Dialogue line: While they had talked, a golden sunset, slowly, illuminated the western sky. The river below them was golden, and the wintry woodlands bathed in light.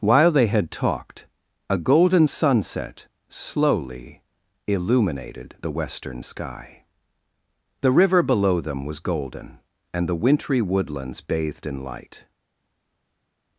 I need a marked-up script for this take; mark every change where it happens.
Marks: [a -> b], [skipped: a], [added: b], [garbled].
While they had talked, a golden sunset, slowly, illuminated the western sky. The river below them was golden, and the wintry woodlands bathed in light.